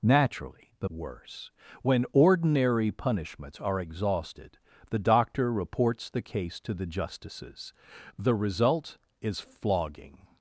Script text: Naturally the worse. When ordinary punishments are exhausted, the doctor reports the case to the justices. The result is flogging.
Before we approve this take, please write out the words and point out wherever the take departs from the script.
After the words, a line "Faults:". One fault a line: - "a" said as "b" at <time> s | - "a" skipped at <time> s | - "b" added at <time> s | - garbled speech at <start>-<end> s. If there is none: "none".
Naturally the worse. When ordinary punishments are exhausted, the doctor reports the case to the justices. The result is flogging.
Faults:
none